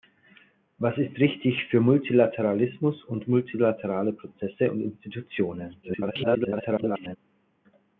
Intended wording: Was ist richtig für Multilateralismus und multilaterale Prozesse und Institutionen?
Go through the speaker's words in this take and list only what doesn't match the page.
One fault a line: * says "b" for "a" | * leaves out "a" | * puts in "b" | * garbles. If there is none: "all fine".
* garbles